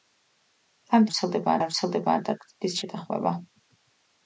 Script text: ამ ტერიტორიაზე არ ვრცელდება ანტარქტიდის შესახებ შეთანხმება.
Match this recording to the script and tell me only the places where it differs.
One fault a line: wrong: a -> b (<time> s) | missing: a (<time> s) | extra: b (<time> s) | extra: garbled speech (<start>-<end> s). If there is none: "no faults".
wrong: ტერიტორიაზე -> ვრცელდება (1.1 s)
missing: შესახებ (2.8 s)